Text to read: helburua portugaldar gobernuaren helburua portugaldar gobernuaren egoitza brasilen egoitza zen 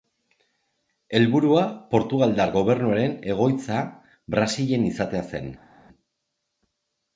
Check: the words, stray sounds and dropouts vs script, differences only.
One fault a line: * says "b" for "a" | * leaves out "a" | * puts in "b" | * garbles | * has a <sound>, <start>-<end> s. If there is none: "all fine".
* leaves out "helburua portugaldar gobernuaren"
* says "izatea" for "egoitza"